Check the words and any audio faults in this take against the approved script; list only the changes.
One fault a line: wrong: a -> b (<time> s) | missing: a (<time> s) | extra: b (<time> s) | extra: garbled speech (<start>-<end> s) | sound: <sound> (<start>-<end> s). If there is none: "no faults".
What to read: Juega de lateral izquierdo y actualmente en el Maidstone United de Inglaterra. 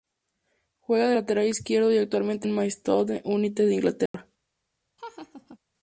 sound: dropout (4.1-4.1 s)
sound: laugh (5.0-5.6 s)